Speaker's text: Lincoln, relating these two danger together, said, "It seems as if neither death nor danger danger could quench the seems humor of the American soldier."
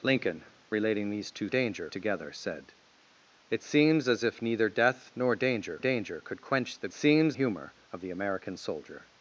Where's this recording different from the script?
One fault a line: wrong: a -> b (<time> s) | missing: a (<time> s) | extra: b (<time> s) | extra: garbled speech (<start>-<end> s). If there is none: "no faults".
no faults